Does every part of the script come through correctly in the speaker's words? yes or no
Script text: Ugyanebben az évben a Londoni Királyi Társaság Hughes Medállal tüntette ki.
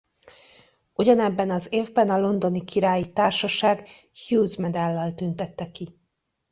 yes